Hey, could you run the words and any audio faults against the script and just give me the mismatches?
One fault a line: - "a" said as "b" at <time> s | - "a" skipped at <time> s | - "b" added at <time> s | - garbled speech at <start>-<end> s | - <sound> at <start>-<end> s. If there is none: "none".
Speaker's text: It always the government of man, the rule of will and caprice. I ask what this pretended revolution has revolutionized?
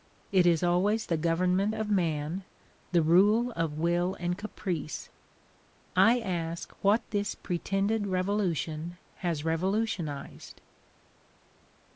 - "is" added at 0.5 s